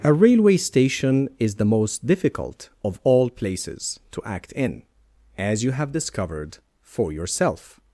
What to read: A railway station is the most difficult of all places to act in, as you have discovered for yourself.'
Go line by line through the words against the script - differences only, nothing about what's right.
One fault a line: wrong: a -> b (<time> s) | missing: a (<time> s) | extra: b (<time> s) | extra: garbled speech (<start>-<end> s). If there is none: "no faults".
no faults